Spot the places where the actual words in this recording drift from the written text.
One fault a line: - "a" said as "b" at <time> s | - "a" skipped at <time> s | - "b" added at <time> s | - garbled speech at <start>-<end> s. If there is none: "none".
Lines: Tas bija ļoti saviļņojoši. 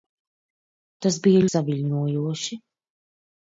- "ļoti" skipped at 1.4 s